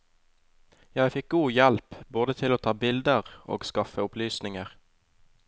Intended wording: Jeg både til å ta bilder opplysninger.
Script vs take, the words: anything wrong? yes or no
yes